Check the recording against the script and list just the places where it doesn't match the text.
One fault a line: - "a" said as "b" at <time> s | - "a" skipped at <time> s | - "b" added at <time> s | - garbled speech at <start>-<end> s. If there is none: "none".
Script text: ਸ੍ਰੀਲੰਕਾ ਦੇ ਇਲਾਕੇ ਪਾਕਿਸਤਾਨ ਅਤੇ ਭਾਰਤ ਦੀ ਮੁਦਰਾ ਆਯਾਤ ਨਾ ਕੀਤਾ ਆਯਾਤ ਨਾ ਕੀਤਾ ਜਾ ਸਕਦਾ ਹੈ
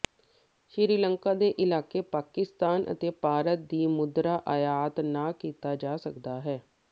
- "ਆਯਾਤ ਨਾ ਕੀਤਾ" skipped at 5.7 s